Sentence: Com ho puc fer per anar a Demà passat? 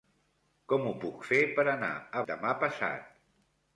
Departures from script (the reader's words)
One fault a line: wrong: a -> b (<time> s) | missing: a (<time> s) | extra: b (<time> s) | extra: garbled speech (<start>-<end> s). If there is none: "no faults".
no faults